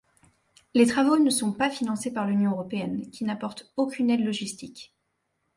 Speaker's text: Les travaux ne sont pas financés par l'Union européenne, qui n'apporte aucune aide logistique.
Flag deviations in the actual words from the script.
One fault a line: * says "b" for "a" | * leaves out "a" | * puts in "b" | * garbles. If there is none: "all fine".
all fine